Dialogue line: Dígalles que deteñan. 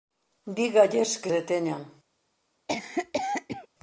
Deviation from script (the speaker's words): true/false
false